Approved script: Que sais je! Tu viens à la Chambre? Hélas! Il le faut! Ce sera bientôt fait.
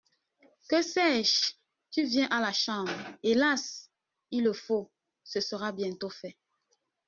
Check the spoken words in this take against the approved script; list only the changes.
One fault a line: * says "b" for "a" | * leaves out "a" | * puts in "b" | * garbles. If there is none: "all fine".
all fine